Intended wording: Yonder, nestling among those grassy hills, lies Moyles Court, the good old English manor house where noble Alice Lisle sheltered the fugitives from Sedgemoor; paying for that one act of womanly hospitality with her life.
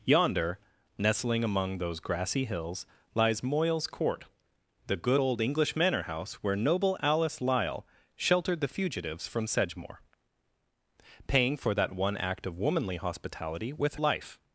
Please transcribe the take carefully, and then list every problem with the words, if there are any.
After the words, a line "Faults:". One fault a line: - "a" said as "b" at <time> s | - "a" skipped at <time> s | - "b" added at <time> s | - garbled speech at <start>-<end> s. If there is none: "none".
Yonder, nestling among those grassy hills, lies Moyles Court, the good old English manor house where noble Alice Lisle sheltered the fugitives from Sedgemoor; paying for that one act of womanly hospitality with life.
Faults:
- "her" skipped at 14.0 s